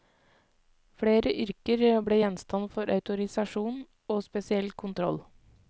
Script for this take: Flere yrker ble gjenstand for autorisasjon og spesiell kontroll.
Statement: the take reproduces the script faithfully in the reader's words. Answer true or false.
true